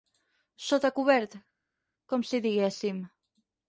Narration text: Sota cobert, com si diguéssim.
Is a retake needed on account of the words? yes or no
no